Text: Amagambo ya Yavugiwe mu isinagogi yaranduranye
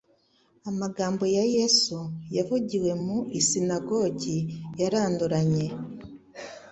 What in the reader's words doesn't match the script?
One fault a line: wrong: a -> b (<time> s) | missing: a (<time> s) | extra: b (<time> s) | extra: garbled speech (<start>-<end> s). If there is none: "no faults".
extra: Yesu (1.5 s)